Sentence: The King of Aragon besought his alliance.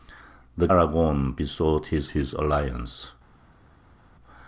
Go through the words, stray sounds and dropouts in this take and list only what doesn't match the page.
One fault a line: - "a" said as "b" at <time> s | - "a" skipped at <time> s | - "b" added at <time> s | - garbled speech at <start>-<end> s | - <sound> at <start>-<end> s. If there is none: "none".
- "King of" skipped at 0.7 s
- "his" added at 2.1 s